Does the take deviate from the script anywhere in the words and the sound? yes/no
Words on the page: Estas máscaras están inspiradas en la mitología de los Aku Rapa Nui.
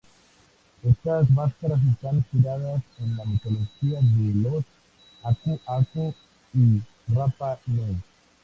yes